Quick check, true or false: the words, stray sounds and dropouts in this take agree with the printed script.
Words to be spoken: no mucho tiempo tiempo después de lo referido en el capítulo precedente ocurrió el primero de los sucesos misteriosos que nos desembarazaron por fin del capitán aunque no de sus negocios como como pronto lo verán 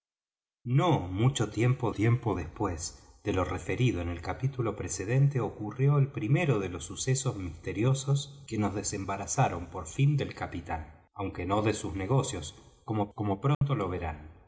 false